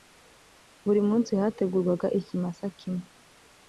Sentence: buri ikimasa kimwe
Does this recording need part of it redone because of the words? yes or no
yes